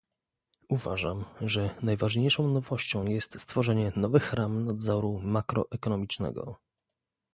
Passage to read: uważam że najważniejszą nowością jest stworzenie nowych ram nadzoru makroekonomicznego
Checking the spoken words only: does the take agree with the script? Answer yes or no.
yes